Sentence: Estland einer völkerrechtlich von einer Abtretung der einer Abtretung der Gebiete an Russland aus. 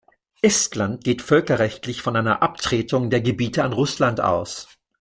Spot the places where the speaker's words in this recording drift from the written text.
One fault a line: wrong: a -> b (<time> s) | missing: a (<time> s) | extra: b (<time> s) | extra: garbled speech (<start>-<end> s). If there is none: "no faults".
wrong: einer -> geht (1.0 s)
missing: einer Abtretung der (3.2 s)